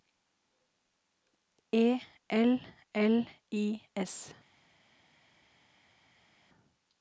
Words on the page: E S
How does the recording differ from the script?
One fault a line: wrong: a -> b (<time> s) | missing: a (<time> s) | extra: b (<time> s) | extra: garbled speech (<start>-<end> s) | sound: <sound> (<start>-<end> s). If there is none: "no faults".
extra: L L I (2.3 s)